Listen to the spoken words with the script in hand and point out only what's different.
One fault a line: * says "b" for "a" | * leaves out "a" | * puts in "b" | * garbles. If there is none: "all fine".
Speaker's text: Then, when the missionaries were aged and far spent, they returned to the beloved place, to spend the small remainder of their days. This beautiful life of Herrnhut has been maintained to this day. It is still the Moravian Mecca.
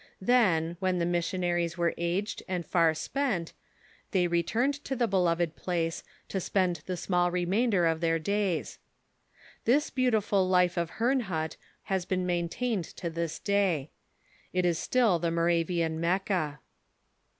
all fine